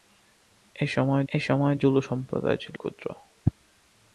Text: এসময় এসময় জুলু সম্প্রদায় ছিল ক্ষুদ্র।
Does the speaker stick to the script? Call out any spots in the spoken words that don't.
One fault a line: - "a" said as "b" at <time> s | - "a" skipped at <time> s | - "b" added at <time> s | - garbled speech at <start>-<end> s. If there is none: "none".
none